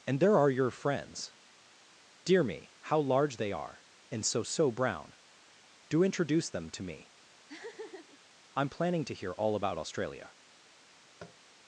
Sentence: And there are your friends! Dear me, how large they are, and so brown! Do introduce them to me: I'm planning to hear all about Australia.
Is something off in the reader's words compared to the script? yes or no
yes